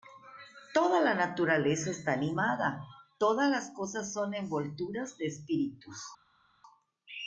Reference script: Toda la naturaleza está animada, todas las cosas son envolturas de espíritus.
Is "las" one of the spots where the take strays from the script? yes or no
no